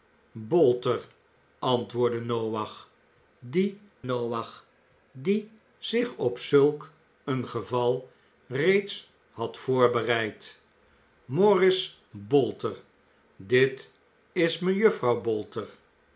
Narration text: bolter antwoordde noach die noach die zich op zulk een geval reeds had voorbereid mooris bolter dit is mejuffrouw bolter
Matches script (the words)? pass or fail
pass